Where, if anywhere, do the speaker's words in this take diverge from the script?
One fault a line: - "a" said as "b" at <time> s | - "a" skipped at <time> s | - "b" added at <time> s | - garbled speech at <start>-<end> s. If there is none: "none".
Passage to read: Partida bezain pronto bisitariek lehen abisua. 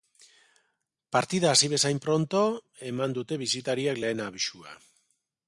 - "hasi" added at 1.5 s
- "eman dute" added at 2.9 s